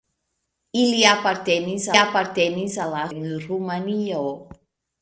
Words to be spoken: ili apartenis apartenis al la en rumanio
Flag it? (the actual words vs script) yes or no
no